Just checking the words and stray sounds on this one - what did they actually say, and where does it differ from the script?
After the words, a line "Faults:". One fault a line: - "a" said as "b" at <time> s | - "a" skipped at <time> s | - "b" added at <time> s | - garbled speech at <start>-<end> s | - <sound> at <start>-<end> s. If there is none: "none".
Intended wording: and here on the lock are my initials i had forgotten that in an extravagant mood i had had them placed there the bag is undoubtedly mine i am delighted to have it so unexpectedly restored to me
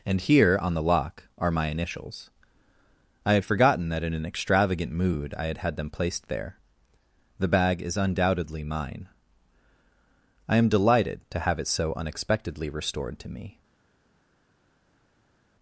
and here on the lock are my initials i had forgotten that in an extravagant mood i had had them placed there the bag is undoubtedly mine i am delighted to have it so unexpectedly restored to me
Faults:
none